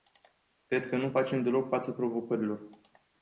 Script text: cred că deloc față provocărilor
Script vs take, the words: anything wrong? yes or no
yes